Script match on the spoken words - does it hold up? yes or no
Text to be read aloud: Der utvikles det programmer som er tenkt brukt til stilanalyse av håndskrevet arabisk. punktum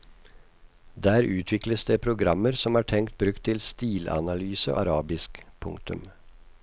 no